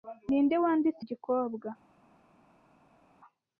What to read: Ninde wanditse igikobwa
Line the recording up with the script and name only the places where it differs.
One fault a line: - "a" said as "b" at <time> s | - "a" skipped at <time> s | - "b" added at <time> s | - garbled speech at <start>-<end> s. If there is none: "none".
none